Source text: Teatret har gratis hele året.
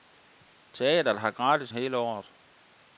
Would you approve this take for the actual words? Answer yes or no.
yes